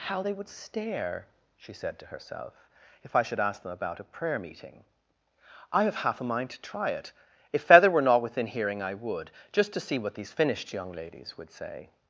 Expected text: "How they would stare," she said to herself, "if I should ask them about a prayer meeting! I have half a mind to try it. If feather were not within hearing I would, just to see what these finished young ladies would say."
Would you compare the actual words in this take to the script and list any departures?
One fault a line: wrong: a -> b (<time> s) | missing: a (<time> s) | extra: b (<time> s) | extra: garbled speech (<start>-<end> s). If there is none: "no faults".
no faults